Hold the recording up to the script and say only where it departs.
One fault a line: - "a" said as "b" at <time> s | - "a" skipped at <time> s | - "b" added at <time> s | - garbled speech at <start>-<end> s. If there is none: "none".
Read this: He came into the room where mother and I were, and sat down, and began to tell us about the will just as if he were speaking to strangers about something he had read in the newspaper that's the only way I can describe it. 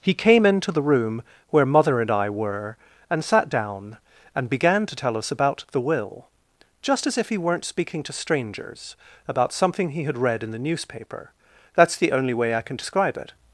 - "were" said as "weren't" at 7.4 s